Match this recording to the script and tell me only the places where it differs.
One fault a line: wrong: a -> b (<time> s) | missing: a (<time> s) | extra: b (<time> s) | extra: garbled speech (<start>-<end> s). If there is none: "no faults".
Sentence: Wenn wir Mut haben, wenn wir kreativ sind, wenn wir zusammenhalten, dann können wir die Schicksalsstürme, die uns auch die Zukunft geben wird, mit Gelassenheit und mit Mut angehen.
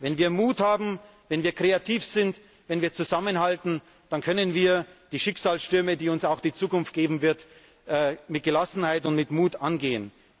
no faults